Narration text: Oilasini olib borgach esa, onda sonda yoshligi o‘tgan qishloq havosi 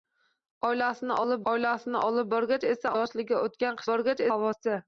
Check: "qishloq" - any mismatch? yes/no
yes